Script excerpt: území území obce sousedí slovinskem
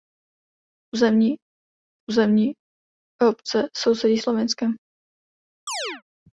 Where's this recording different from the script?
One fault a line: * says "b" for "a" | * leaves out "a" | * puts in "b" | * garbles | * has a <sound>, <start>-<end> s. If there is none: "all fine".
* has a chirp, 5.7-6.0 s